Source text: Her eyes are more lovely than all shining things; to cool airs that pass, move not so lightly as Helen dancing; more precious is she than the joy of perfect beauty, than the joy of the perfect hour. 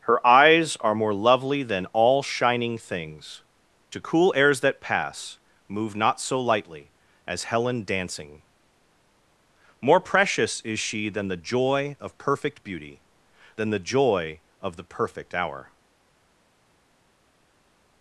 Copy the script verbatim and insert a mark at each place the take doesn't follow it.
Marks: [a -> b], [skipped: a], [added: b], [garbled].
Her eyes are more lovely than all shining things; to cool airs that pass, move not so lightly as Helen dancing; more precious is she than the joy of perfect beauty, than the joy of the perfect hour.